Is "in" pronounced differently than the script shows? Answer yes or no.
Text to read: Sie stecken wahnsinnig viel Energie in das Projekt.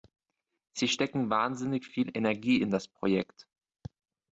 no